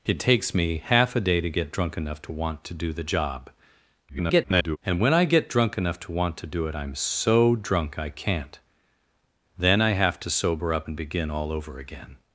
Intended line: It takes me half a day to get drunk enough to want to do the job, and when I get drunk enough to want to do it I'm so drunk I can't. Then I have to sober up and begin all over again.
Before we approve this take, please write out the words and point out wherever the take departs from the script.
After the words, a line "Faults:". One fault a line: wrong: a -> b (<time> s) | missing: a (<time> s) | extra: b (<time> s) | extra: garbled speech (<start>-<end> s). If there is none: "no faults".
It takes me half a day to get drunk enough to want to do the job, [garbled] and when I get drunk enough to want to do it I'm so drunk I can't. Then I have to sober up and begin all over again.
Faults:
extra: garbled speech (4.1-4.8 s)